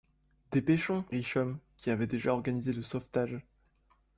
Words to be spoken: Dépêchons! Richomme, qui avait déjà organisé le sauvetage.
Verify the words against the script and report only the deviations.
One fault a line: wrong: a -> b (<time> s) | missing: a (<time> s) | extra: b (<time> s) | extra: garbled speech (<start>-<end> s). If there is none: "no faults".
no faults